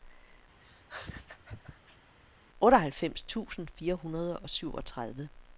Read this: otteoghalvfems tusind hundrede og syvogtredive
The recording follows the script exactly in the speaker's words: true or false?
false